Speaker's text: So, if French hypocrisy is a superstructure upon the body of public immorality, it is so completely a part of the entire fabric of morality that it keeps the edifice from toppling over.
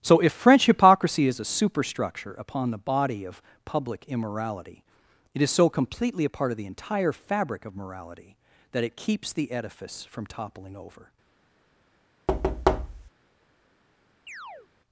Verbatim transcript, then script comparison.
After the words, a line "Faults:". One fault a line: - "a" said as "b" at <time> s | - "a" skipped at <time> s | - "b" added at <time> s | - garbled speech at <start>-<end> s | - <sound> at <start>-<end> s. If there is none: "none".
So, if French hypocrisy is a superstructure upon the body of public immorality, it is so completely a part of the entire fabric of morality that it keeps the edifice from toppling over.
Faults:
- thud at 12.3-13.1 s
- chirp at 14.3-14.7 s